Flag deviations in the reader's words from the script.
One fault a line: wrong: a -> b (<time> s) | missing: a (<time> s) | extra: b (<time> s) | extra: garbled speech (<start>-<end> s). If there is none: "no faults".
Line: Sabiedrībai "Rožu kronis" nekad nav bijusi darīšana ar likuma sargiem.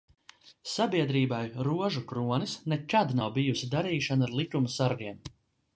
no faults